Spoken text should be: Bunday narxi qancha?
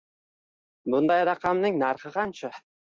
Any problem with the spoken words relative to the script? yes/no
yes